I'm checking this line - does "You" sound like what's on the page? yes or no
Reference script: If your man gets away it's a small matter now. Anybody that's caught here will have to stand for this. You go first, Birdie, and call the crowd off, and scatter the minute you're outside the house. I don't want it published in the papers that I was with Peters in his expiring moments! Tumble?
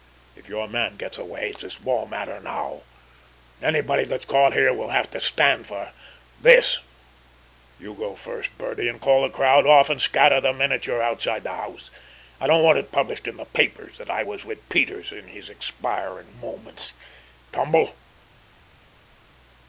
yes